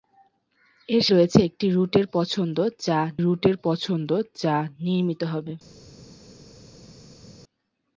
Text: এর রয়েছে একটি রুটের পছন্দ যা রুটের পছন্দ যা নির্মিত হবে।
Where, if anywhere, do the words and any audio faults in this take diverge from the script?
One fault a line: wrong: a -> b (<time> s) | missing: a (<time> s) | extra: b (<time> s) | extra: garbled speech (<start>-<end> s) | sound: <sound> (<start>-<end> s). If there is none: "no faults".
no faults